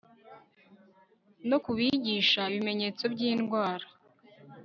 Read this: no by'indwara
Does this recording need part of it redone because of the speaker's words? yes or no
yes